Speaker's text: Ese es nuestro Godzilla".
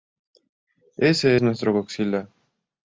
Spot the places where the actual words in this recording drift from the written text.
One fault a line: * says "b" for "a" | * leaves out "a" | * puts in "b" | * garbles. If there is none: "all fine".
all fine